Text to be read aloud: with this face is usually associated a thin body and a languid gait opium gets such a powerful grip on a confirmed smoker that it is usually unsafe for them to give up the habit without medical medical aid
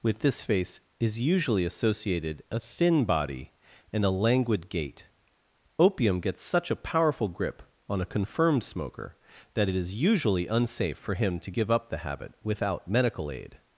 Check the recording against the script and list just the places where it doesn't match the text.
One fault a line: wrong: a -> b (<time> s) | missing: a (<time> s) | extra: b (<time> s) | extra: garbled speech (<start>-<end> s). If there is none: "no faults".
wrong: them -> him (11.1 s)
missing: medical (13.3 s)